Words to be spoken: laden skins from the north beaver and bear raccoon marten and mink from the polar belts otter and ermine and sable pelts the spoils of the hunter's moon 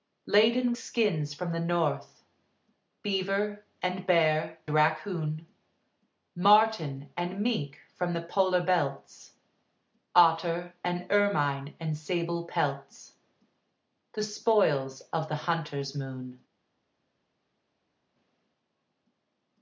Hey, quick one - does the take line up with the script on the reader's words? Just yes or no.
yes